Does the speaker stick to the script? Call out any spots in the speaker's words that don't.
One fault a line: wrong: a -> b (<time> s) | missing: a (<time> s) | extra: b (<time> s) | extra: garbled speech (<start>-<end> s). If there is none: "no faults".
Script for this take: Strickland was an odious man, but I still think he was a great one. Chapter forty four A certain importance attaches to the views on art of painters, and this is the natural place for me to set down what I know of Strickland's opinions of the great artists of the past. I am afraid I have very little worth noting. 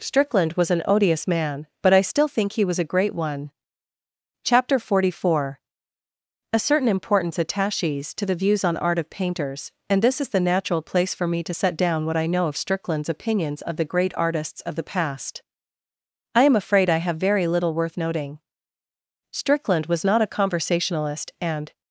extra: Strickland was not a conversationalist and (19.3 s)